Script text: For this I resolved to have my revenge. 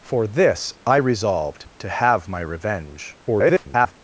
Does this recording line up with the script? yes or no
no